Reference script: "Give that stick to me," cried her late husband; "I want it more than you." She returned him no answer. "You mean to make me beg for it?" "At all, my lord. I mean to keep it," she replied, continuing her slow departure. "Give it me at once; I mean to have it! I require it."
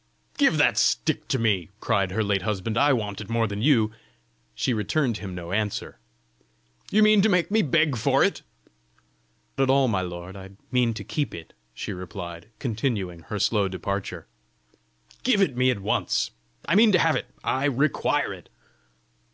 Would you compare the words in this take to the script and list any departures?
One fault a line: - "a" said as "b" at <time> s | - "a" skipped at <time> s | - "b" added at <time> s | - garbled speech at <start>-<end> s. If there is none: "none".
none